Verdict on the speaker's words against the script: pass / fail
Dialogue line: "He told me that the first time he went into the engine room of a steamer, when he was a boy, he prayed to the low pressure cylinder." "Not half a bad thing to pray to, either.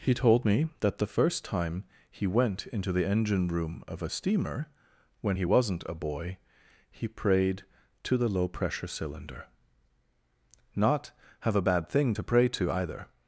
fail